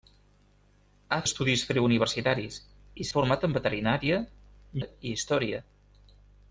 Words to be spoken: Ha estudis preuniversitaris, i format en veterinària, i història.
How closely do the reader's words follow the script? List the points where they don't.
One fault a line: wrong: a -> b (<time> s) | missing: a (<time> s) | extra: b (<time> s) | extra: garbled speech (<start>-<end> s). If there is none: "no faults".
no faults